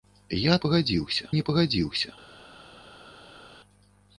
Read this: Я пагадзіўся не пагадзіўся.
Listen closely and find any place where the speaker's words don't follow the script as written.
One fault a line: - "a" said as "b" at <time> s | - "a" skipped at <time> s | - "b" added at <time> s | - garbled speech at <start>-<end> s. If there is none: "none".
none